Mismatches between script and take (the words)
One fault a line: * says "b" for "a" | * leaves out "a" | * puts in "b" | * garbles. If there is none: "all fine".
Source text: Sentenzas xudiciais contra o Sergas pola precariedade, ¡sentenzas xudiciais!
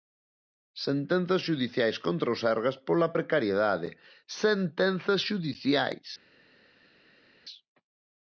all fine